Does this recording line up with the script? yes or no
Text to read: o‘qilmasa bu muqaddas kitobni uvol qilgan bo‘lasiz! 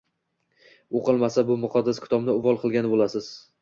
yes